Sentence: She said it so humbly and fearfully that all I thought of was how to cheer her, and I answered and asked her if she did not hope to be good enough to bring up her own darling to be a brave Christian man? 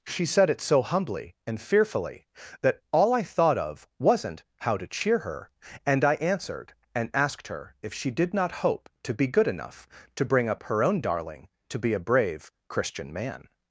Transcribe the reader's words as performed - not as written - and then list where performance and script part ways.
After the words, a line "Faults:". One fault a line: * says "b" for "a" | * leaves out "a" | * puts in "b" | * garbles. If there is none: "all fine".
She said it so humbly and fearfully that all I thought of wasn't how to cheer her, and I answered and asked her if she did not hope to be good enough to bring up her own darling to be a brave Christian man?
Faults:
* says "wasn't" for "was"